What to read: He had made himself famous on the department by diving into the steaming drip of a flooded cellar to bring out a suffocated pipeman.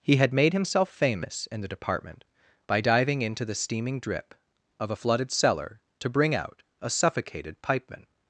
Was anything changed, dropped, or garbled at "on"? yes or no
yes